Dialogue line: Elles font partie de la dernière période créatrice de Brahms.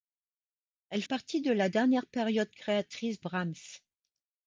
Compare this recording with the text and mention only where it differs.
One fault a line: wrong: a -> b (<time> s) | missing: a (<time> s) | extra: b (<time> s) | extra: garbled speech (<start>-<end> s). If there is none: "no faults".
missing: font (1.0 s)
missing: de (3.2 s)